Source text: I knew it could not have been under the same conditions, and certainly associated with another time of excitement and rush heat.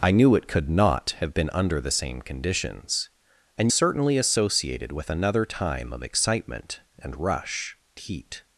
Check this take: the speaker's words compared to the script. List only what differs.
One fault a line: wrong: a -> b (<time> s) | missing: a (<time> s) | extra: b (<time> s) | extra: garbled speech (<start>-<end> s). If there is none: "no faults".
no faults